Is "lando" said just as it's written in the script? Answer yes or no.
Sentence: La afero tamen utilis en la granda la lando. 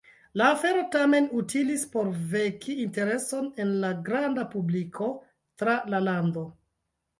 yes